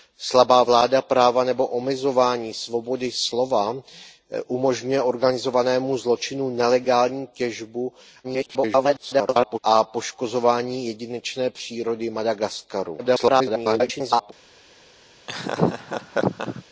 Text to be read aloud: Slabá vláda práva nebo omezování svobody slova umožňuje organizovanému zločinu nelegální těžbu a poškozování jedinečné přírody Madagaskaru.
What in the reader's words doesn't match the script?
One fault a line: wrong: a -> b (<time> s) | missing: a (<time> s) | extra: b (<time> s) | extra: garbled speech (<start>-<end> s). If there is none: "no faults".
extra: garbled speech (8.2-9.6 s)
extra: garbled speech (13.0-14.3 s)